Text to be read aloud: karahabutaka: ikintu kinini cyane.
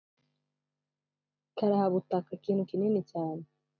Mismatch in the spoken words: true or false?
false